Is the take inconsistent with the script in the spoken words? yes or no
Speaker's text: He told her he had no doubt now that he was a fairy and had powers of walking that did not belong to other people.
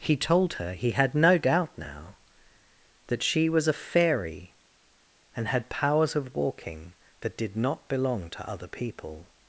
yes